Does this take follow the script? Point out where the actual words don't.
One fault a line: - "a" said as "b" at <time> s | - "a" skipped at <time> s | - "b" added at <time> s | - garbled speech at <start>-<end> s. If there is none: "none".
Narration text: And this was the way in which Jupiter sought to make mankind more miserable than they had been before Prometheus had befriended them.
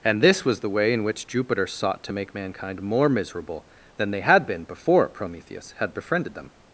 none